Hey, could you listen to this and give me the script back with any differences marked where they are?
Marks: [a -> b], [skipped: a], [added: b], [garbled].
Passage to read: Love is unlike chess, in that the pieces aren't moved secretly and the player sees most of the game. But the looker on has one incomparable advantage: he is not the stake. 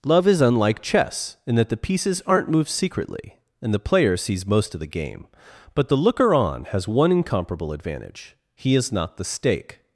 Love is unlike chess, in that the pieces aren't moved secretly and the player sees most of the game. But the looker on has one incomparable advantage: he is not the stake.